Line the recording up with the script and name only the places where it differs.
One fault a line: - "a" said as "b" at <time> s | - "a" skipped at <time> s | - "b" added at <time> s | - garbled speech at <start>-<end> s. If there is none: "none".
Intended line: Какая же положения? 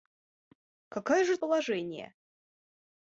none